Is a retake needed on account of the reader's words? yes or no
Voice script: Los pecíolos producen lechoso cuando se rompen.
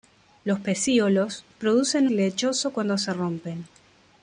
no